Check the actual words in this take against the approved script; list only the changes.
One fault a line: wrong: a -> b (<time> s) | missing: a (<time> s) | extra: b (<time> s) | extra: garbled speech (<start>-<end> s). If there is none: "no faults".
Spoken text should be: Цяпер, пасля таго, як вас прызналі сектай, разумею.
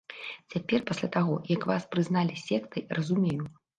no faults